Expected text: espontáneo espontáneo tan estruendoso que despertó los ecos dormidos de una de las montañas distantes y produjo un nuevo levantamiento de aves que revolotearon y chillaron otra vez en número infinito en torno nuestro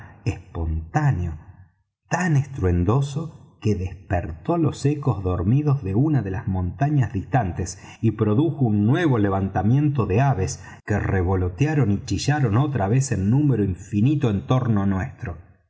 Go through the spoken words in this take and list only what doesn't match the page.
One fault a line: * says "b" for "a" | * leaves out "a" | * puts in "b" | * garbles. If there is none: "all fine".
* leaves out "espontáneo"